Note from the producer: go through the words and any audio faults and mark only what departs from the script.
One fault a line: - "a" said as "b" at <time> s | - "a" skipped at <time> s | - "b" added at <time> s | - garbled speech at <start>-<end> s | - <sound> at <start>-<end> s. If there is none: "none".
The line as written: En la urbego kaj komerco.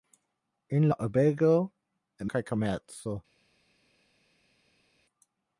none